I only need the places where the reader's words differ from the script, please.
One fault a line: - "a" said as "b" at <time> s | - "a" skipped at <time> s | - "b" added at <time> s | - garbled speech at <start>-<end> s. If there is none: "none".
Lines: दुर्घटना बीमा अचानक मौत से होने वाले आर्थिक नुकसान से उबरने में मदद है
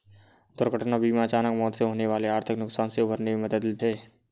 none